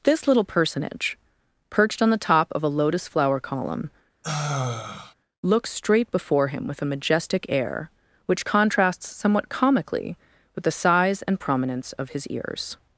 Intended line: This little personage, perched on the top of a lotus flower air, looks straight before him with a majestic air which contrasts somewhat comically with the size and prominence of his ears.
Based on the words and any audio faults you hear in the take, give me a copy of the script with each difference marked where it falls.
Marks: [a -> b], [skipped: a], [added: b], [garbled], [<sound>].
This little personage, perched on the top of a lotus flower [air, -> column] [sigh] looks straight before him with a majestic air which contrasts somewhat comically with the size and prominence of his ears.